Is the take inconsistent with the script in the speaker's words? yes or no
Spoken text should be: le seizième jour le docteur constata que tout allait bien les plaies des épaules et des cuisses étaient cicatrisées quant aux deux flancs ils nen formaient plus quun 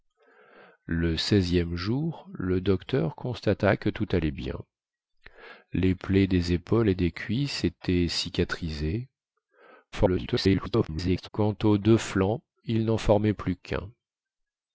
yes